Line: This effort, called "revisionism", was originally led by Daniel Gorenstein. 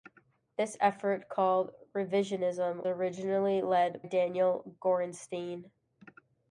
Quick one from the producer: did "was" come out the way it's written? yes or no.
no